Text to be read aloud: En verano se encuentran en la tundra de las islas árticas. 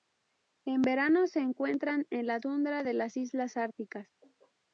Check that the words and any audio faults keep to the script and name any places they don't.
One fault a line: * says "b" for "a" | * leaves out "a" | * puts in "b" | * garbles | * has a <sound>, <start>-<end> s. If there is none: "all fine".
all fine